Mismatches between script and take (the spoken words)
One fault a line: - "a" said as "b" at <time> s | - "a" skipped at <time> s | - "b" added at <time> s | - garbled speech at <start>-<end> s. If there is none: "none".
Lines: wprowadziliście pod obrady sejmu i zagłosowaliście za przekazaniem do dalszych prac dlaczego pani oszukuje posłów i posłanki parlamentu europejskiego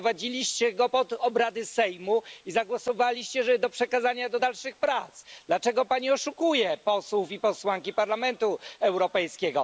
- "go" added at 0.7 s